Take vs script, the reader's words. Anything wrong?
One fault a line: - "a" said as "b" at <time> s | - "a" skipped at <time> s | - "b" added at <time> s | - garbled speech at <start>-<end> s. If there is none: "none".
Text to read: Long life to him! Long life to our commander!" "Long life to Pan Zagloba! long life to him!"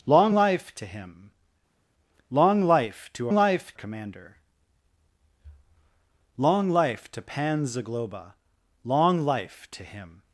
- "our" said as "life" at 3.3 s